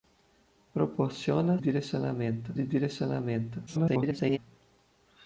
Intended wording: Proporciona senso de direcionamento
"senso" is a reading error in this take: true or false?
true